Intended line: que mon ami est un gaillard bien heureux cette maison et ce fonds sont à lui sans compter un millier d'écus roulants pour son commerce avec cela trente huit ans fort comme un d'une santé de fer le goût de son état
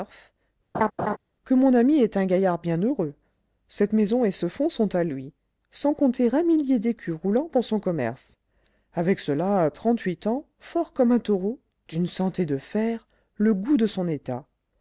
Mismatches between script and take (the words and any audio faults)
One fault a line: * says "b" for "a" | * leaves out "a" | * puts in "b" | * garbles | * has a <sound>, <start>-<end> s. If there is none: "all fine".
* has a laugh, 0.7-1.2 s
* puts in "taureau"